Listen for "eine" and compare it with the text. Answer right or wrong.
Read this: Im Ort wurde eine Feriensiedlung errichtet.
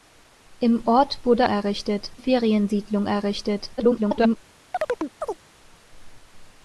wrong